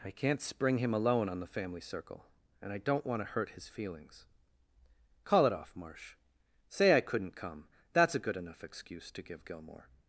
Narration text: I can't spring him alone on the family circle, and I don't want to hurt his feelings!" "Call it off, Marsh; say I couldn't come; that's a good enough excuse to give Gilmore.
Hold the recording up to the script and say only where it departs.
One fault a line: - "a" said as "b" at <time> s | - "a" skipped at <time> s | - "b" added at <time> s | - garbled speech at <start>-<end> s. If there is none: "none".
none